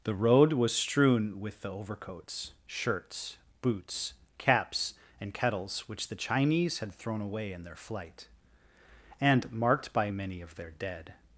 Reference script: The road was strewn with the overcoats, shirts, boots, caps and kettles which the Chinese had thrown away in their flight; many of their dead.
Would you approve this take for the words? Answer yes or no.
no